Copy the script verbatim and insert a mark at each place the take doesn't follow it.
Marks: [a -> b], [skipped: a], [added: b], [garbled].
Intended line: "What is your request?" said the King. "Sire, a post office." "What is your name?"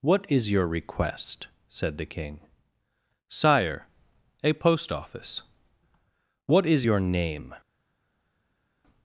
"What is your request?" said the King. "Sire, a post office." "What is your name?"